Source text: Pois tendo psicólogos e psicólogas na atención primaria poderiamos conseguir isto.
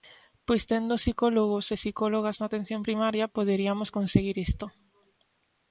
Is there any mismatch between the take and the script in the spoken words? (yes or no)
no